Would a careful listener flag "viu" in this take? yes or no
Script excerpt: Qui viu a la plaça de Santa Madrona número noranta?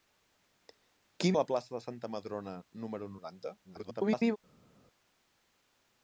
yes